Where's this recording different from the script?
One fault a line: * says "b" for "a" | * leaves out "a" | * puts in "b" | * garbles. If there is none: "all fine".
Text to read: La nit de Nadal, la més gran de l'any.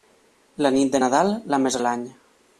* leaves out "gran"